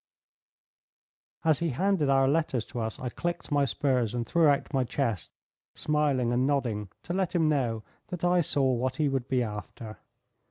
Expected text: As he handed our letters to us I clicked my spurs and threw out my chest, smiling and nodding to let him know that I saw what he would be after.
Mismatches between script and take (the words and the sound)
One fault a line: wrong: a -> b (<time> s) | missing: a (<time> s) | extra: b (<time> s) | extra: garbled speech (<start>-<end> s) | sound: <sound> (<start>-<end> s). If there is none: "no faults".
no faults